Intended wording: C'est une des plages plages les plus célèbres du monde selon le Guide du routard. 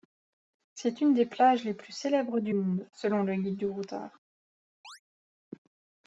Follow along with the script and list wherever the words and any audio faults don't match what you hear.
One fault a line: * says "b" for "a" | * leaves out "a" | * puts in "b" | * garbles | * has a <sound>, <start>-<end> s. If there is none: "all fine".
* leaves out "plages"
* has a chirp, 4.8-5.0 s